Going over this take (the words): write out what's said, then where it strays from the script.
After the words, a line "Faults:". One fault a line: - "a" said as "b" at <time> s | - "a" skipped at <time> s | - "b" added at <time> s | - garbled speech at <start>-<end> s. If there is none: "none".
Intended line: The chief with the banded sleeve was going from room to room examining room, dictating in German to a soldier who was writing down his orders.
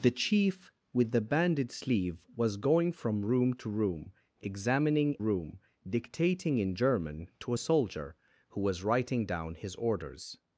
The chief with the banded sleeve was going from room to room examining room, dictating in German to a soldier who was writing down his orders.
Faults:
none